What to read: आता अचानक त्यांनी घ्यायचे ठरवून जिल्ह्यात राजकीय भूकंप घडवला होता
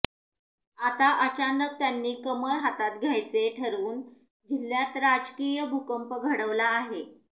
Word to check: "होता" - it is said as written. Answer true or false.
false